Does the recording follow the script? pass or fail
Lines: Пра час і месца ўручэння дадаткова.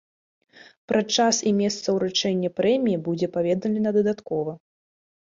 fail